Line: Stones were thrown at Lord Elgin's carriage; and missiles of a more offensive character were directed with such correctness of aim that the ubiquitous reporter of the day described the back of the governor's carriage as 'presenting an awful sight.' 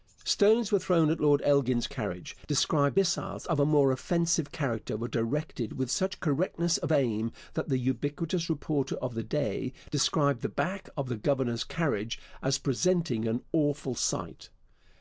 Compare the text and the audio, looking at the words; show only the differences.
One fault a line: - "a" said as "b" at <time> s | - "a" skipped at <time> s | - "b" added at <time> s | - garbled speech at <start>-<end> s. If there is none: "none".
- "and" said as "described" at 2.5 s